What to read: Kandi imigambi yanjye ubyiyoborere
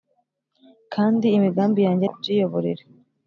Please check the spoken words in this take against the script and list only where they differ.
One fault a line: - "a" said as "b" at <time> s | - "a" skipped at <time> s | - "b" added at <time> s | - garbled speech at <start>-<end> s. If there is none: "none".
none